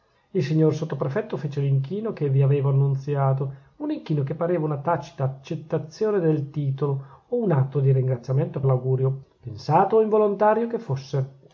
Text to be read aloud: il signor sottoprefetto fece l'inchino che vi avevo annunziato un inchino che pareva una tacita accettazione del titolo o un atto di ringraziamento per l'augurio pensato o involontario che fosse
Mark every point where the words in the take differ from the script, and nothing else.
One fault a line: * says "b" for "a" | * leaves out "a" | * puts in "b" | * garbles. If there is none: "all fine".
* leaves out "per"